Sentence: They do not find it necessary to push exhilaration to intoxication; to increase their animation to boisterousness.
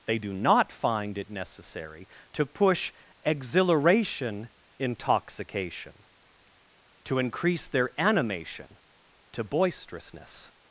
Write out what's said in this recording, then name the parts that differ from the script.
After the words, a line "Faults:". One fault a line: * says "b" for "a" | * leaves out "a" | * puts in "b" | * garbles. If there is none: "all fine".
They do not find it necessary to push exhilaration intoxication; to increase their animation to boisterousness.
Faults:
* leaves out "to"